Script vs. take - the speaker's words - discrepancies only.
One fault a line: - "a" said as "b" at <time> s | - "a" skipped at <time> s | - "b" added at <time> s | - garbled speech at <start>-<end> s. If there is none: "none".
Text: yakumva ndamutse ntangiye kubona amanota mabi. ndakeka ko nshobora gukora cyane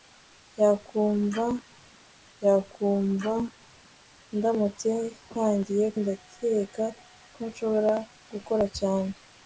- "yakumva" added at 2.4 s
- "kubona amanota mabi" skipped at 5.9 s